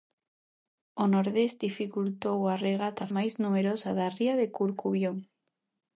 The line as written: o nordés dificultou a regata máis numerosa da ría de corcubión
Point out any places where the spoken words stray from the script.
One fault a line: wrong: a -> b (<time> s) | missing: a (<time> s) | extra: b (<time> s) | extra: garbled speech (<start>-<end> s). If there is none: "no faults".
no faults